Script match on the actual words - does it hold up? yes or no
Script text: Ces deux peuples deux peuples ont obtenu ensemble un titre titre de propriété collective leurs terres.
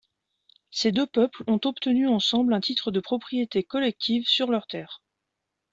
no